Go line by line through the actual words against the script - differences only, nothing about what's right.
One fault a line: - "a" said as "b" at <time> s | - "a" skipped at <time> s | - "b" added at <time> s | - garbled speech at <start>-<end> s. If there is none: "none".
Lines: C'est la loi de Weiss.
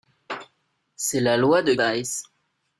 none